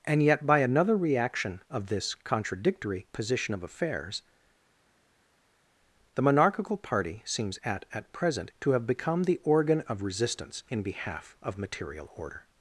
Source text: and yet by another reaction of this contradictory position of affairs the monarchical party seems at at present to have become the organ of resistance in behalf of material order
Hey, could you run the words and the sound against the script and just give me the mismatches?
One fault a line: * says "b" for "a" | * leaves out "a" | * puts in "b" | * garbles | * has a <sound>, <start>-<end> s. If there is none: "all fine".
all fine